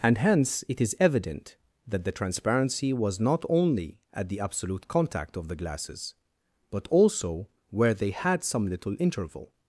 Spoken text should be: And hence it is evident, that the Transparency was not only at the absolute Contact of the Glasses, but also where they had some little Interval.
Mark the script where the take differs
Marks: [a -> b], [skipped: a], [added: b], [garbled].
And hence it is evident, that the Transparency was not only at the absolute Contact of the Glasses, but also where they had some little Interval.